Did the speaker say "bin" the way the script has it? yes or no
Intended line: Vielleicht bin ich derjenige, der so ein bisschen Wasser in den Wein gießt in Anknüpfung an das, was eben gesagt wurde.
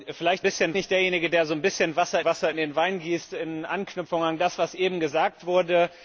no